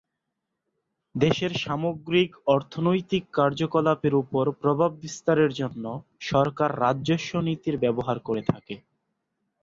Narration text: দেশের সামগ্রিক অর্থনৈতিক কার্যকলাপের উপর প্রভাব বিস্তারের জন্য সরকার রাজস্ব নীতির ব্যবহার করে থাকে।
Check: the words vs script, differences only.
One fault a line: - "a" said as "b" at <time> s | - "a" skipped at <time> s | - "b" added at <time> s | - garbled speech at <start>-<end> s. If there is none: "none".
none